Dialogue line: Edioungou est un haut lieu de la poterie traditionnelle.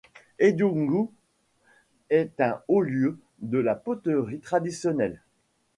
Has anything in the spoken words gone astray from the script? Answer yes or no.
no